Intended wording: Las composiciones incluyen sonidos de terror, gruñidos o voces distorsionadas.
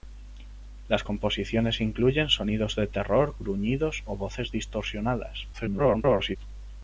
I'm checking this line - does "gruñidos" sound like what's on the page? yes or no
yes